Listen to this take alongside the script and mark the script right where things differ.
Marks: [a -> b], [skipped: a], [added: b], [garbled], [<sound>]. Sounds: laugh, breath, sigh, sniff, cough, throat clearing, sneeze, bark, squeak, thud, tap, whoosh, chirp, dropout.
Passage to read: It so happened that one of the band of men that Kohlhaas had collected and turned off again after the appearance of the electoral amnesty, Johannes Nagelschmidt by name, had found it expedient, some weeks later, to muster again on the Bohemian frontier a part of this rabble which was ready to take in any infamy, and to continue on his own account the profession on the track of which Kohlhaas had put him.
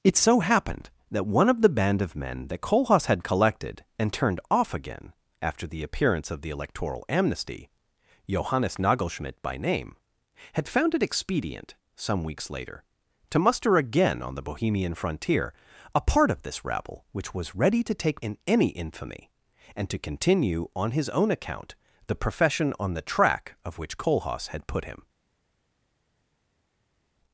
It so happened that one of the band of men that Kohlhaas had collected and turned off again after the appearance of the electoral amnesty, Johannes Nagelschmidt by name, had found it expedient, some weeks later, to muster again on the Bohemian frontier a part of this rabble which was ready to take in any infamy, and to continue on his own account the profession on the track of which Kohlhaas had put him.